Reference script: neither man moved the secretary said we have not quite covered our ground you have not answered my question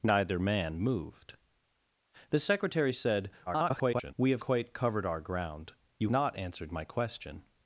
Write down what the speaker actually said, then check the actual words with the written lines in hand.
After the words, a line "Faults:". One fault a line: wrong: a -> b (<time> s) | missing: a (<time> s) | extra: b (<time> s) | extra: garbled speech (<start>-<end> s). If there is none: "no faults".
neither man moved the secretary said [garbled] we have quite covered our ground you not answered my question
Faults:
extra: garbled speech (3.5-4.1 s)
missing: not (4.4 s)
missing: have (6.1 s)